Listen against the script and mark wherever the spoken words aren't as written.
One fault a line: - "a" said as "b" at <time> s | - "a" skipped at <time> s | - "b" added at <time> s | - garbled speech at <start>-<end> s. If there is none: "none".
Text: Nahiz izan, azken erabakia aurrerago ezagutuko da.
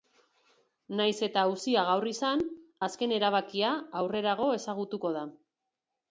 - "eta auzia gaur" added at 1.3 s